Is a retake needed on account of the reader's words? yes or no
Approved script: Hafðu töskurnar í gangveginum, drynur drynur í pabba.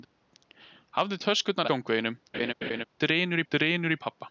no